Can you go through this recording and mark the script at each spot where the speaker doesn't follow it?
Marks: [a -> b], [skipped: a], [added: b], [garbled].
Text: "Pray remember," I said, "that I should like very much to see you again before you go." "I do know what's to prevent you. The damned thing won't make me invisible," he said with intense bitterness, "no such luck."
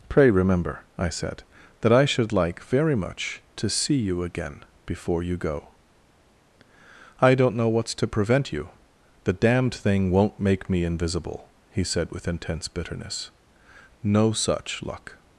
"Pray remember," I said, "that I should like very much to see you again before you go." "I [do -> don't] know what's to prevent you. The damned thing won't make me invisible," he said with intense bitterness, "no such luck."